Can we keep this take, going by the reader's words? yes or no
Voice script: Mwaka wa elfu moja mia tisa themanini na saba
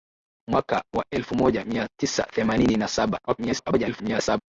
no